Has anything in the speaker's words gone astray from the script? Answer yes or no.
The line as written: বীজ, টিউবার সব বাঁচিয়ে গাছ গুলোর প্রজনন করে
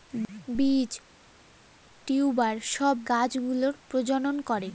yes